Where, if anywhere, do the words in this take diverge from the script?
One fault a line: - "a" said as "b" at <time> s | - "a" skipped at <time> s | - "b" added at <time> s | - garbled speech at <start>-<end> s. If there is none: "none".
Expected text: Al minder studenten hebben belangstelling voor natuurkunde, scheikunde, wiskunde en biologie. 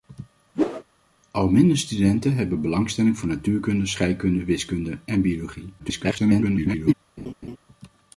- garbled speech at 5.8-6.9 s